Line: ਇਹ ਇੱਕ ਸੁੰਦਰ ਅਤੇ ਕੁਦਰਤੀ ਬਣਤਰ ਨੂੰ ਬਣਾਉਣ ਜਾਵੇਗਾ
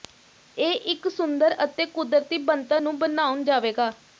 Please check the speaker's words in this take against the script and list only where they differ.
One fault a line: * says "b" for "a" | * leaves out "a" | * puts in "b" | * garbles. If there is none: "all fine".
all fine